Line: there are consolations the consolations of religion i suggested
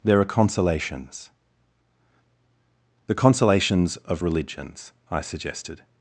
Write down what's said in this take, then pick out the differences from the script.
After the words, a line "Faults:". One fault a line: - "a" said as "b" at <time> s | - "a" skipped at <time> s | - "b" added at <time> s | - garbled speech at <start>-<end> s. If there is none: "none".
there are consolations the consolations of religions i suggested
Faults:
- "religion" said as "religions" at 4.2 s